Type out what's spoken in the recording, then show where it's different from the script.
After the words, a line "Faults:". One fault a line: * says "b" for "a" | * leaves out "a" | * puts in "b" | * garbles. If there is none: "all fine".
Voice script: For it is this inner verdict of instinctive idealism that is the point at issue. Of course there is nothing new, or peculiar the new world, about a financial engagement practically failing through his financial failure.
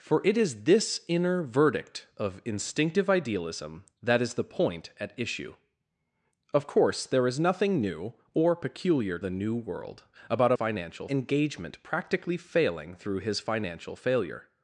For it is this inner verdict of instinctive idealism that is the point at issue. Of course there is nothing new, or peculiar the new world, about a financial engagement practically failing through his financial failure.
Faults:
all fine